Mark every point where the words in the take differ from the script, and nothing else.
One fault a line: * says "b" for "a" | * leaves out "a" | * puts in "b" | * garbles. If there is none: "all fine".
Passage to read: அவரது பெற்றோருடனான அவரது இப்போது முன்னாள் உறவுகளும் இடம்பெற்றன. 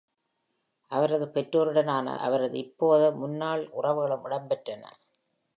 all fine